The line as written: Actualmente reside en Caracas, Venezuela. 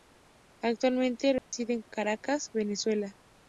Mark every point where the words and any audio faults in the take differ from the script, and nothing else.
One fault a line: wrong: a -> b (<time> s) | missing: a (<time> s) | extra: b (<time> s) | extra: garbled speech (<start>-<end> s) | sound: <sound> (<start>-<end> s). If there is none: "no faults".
sound: dropout (1.4-1.5 s)